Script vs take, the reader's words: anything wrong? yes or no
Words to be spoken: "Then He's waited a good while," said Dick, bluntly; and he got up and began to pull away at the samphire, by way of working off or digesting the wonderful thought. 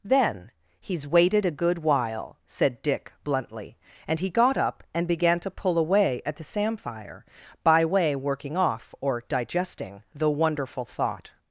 yes